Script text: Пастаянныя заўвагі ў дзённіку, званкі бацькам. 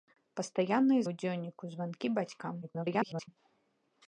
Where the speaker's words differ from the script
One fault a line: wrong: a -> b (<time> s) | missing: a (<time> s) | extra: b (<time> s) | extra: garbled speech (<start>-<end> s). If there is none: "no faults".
missing: заўвагі (1.0 s)
extra: garbled speech (2.6-3.3 s)